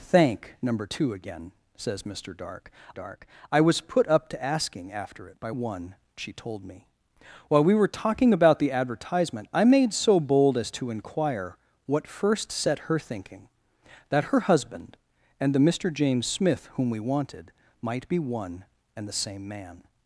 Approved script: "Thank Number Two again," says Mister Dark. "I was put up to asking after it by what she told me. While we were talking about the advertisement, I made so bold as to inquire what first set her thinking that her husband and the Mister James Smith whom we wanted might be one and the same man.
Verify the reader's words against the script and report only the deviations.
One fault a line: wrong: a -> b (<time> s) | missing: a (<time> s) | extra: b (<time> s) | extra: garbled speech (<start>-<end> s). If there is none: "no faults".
extra: Dark (2.9 s)
wrong: what -> one (5.5 s)